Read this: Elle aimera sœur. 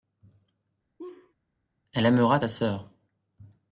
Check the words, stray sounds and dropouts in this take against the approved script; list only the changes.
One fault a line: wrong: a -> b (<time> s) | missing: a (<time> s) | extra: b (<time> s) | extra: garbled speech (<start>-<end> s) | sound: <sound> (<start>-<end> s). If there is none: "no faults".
sound: laugh (1.0-1.3 s)
extra: ta (2.4 s)